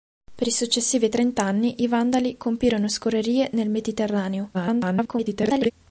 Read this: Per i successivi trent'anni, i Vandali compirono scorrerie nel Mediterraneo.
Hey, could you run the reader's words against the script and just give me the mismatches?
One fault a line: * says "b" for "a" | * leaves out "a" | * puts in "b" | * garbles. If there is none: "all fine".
* garbles